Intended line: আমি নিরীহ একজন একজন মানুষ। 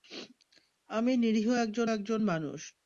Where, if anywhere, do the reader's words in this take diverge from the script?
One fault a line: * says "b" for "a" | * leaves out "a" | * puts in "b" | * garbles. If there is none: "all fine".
all fine